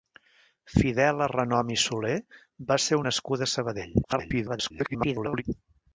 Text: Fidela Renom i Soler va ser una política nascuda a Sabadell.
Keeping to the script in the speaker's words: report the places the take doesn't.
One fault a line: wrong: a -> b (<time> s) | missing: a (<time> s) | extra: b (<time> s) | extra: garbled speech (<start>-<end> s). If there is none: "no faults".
missing: una política (3.0 s)
extra: garbled speech (4.0-5.4 s)